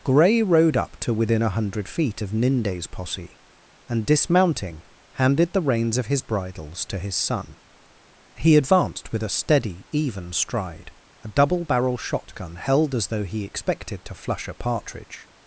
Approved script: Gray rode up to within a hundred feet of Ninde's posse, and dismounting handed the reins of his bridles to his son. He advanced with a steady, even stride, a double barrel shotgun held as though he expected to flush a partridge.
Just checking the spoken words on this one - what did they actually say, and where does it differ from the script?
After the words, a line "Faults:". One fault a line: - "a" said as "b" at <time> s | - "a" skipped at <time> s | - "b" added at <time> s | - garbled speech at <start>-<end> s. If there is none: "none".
Gray rode up to within a hundred feet of Ninde's posse, and dismounting handed the reins of his bridles to his son. He advanced with a steady, even stride, a double barrel shotgun held as though he expected to flush a partridge.
Faults:
none